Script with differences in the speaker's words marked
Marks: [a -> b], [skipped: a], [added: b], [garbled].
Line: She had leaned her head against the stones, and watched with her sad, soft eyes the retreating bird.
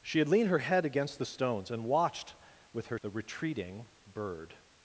She had leaned her head against the stones, and watched with her [skipped: sad, soft eyes] the retreating bird.